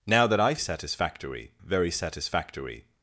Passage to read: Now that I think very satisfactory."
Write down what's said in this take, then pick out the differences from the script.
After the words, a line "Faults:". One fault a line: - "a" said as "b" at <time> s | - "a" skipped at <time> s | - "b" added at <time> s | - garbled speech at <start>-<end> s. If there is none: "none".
Now that I satisfactory very satisfactory."
Faults:
- "think" said as "satisfactory" at 0.6 s